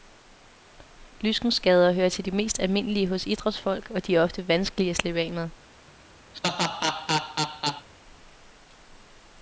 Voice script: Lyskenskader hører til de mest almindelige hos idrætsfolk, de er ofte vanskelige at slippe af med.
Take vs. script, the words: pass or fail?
fail